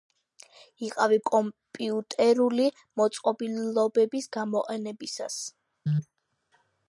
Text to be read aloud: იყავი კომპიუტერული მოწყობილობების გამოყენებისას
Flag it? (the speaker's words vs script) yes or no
no